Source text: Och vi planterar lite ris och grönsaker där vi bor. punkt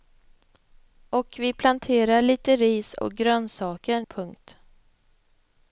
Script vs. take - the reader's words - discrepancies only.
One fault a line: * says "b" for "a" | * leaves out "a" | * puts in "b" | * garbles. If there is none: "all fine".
* leaves out "där vi bor"